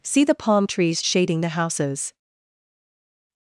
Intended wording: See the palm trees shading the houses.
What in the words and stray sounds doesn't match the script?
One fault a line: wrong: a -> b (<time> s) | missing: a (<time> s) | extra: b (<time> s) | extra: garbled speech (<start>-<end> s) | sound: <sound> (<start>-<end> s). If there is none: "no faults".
no faults